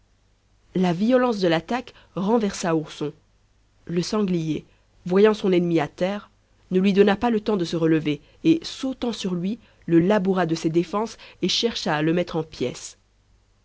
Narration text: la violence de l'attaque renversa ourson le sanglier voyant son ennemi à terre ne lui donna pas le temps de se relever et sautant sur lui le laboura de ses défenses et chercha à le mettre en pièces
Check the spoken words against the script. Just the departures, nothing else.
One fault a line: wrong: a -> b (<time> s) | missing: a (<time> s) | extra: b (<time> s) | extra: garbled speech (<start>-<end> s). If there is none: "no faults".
no faults